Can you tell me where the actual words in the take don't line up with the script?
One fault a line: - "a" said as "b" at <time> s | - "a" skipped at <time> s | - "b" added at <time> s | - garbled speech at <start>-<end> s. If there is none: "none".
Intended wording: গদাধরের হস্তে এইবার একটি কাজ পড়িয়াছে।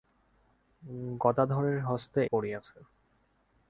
- "এইবার একটি কাজ" skipped at 2.2 s